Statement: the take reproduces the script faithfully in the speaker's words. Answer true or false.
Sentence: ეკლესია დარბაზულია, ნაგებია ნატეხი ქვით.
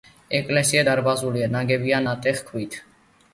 true